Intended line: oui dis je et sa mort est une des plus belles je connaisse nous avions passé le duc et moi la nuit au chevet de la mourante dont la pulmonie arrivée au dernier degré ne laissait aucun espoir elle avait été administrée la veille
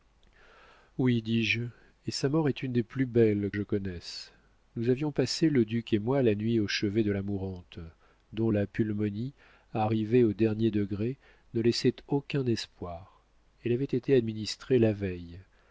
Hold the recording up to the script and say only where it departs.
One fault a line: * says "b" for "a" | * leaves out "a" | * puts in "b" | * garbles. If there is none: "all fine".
all fine